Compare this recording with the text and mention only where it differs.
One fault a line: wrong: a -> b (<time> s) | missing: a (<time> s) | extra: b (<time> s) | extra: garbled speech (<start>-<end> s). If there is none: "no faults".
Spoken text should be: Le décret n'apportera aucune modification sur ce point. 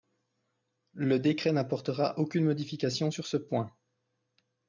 no faults